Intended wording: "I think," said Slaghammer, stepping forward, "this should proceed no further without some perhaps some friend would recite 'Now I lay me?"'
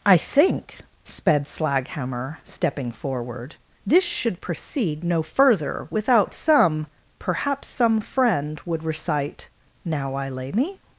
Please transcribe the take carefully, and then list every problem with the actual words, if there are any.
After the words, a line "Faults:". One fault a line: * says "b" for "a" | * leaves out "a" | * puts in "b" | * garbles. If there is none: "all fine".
"I think," sped Slaghammer, stepping forward, "this should proceed no further without some perhaps some friend would recite 'Now I lay me?"'
Faults:
* says "sped" for "said"